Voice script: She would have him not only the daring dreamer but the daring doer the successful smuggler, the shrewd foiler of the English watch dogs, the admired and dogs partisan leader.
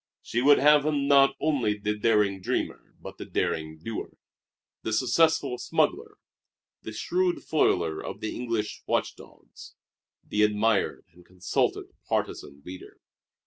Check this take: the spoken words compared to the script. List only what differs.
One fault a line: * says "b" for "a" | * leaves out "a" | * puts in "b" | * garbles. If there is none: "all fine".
* says "consulted" for "dogs"